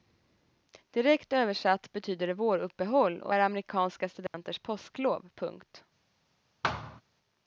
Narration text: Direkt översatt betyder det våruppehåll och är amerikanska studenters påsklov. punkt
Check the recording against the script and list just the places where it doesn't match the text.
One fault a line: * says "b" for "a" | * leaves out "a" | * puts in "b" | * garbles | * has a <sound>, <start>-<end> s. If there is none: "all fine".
* has a dropout, 4.3-4.3 s
* has a thud, 6.6-7.0 s